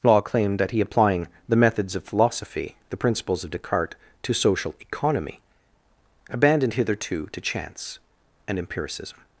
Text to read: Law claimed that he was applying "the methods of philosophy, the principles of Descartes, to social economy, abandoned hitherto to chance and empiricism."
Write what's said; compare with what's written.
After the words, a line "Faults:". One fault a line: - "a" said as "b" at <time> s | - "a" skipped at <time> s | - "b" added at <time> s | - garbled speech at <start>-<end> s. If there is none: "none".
Law claimed that he applying "the methods of philosophy, the principles of Descartes, to social economy, abandoned hitherto to chance and empiricism."
Faults:
- "was" skipped at 0.8 s